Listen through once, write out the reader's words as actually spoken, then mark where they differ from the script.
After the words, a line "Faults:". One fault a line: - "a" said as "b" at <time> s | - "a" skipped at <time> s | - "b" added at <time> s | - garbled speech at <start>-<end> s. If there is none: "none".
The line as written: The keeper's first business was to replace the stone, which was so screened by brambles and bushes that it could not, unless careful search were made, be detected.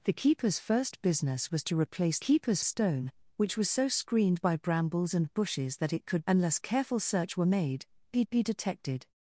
The keeper's first business was to replace keeper's stone, which was so screened by brambles and bushes that it could unless careful search were made, be be detected.
Faults:
- "the" said as "keeper's" at 2.2 s
- "not" skipped at 6.2 s
- "be" added at 8.3 s